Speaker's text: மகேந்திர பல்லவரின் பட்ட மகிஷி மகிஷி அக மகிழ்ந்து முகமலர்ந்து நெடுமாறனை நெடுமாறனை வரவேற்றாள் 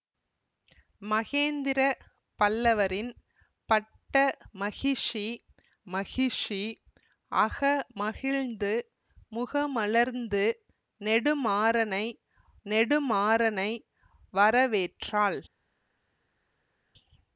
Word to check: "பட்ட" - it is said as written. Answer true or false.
true